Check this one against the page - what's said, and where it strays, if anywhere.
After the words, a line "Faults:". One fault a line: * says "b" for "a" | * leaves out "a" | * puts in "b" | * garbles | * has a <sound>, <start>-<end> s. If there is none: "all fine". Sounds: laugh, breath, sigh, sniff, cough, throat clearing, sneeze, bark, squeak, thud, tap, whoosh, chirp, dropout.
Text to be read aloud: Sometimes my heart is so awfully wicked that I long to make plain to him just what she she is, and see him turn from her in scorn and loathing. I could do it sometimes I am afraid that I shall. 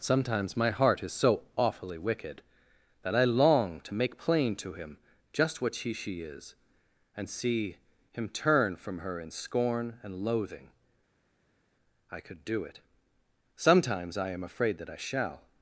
Sometimes my heart is so awfully wicked that I long to make plain to him just what she she is, and see him turn from her in scorn and loathing. I could do it sometimes I am afraid that I shall.
Faults:
all fine